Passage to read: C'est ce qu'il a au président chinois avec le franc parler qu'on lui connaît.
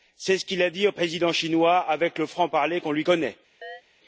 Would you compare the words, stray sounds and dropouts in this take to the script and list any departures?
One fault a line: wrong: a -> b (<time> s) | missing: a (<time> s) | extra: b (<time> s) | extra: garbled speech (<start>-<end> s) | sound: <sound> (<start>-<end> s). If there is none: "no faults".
extra: dit (0.7 s)
sound: chirp (3.6-3.8 s)